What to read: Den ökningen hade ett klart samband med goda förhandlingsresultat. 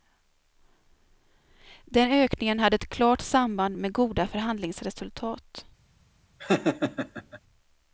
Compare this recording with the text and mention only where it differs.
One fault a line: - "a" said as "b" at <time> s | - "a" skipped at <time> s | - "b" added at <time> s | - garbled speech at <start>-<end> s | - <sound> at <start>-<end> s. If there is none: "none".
- laugh at 6.4-7.4 s